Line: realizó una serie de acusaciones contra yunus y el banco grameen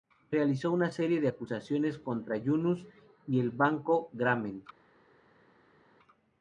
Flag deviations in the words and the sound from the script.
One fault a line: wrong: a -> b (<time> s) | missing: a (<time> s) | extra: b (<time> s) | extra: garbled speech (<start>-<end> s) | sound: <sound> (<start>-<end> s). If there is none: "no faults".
no faults